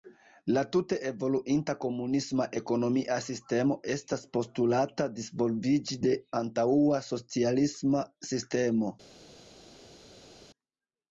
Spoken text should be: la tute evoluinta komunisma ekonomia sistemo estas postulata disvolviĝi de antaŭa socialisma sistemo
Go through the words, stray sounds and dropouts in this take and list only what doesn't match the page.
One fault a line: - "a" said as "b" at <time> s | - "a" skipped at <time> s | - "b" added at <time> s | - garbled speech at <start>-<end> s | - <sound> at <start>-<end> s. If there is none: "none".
none